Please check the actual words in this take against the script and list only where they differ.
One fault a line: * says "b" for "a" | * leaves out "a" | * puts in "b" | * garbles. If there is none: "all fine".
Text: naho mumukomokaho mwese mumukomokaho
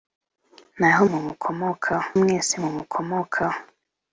all fine